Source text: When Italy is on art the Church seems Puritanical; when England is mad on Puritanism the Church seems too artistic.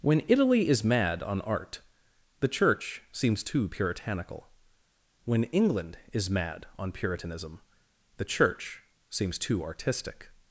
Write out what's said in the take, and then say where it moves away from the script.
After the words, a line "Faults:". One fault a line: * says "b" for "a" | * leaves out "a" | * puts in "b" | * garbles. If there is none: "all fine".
When Italy is mad on art the Church seems too Puritanical; when England is mad on Puritanism the Church seems too artistic.
Faults:
* puts in "mad"
* puts in "too"